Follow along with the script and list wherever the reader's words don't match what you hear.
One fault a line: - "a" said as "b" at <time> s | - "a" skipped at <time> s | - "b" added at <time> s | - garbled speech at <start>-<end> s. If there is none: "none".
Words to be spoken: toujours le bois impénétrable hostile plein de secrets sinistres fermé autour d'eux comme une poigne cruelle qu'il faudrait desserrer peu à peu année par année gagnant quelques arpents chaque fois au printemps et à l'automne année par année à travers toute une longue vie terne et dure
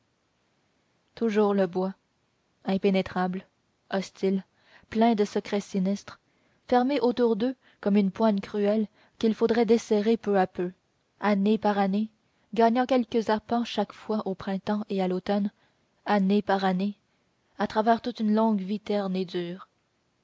none